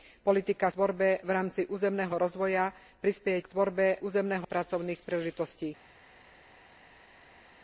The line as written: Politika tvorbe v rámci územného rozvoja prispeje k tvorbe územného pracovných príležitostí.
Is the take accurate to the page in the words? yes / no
yes